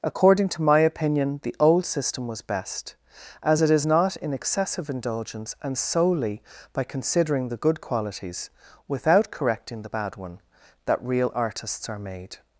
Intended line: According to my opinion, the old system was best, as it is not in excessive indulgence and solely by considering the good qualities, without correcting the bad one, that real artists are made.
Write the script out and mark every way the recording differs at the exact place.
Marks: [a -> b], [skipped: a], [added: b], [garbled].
According to my opinion, the old system was best, as it is not in excessive indulgence and solely by considering the good qualities, without correcting the bad one, that real artists are made.